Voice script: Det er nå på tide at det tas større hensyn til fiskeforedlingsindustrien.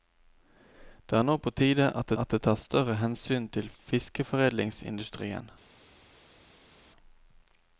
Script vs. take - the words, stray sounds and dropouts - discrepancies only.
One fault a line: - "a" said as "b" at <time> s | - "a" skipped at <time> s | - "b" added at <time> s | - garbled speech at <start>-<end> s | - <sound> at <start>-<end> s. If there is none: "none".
- "at" added at 2.2 s